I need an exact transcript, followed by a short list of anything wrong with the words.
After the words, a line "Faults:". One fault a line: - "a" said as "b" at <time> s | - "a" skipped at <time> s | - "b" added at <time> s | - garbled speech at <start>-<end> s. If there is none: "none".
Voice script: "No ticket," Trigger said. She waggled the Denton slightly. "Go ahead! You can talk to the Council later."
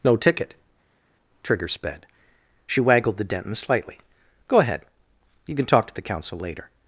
"No ticket," Trigger sped. She waggled the Denton slightly. "Go ahead! You can talk to the Council later."
Faults:
- "said" said as "sped" at 1.7 s